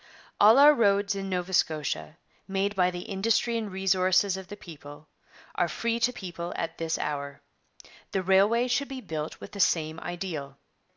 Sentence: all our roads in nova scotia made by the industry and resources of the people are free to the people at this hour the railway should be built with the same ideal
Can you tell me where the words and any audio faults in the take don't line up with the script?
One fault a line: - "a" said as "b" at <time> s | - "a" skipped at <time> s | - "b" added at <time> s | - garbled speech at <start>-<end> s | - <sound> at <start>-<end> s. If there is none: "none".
- "the" skipped at 6.1 s